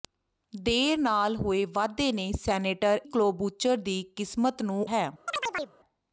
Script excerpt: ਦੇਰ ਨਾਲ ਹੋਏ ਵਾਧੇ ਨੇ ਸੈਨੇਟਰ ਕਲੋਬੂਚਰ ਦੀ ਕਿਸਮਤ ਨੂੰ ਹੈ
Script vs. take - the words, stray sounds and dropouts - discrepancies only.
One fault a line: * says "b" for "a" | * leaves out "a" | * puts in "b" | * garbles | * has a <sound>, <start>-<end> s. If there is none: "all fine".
* has a chirp, 5.3-5.8 s